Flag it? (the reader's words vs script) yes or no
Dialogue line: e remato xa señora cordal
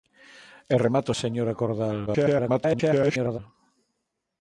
yes